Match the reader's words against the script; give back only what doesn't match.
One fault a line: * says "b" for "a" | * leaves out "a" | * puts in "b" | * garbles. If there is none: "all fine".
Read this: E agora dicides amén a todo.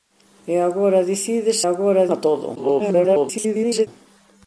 * says "agora" for "amén"
* garbles